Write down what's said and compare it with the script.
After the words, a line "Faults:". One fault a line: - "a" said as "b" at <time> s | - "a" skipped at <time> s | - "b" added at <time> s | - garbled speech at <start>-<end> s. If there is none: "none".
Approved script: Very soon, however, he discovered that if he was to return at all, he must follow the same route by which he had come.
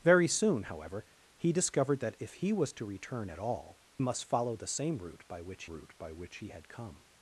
Very soon, however, he discovered that if he was to return at all, must follow the same route by which route by which he had come.
Faults:
- "he" skipped at 3.8 s
- "route by which" added at 5.6 s